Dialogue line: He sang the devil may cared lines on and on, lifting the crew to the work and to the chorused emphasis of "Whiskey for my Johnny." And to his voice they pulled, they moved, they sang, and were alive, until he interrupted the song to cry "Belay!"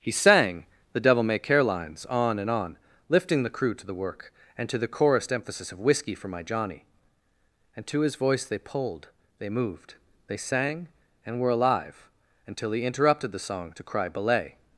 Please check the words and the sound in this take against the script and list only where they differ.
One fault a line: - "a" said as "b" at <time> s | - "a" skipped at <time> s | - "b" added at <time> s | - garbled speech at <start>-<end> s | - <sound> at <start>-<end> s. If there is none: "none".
- "cared" said as "care" at 1.4 s